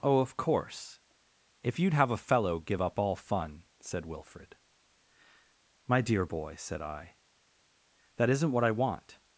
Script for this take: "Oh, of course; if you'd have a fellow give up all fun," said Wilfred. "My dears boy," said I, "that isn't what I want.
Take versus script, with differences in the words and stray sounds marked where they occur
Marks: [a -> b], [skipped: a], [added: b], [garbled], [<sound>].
"Oh, of course; if you'd have a fellow give up all fun," said Wilfred. "My [dears -> dear] boy," said I, "that isn't what I want.